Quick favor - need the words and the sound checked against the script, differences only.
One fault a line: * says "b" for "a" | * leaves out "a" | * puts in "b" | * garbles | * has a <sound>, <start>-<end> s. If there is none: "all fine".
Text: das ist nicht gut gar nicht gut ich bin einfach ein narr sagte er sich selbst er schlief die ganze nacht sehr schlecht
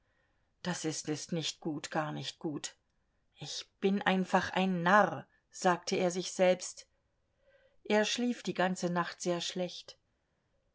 * puts in "ist"